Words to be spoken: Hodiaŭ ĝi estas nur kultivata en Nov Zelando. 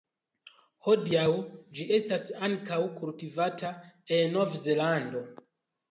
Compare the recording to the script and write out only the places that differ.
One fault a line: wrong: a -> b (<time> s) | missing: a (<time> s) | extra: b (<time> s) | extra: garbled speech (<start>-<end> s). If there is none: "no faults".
wrong: nur -> ankaŭ (2.5 s)